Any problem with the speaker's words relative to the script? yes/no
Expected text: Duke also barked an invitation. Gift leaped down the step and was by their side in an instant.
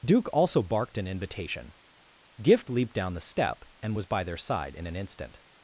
no